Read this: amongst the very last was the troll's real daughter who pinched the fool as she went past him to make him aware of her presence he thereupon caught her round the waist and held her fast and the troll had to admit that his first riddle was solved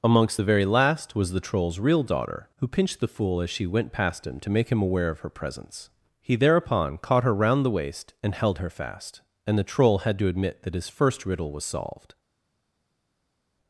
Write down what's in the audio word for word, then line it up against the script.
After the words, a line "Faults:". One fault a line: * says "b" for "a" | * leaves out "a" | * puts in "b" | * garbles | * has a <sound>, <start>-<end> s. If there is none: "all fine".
amongst the very last was the troll's real daughter who pinched the fool as she went past him to make him aware of her presence he thereupon caught her round the waist and held her fast and the troll had to admit that his first riddle was solved
Faults:
all fine